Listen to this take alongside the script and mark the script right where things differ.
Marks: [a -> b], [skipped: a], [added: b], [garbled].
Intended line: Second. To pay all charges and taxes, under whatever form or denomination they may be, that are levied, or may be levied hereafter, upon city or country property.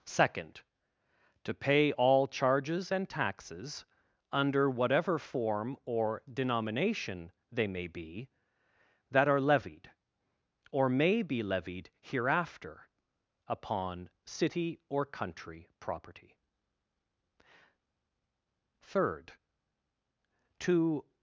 Second. To pay all charges and taxes, under whatever form or denomination they may be, that are levied, or may be levied hereafter, upon city or country property. [added: Third To]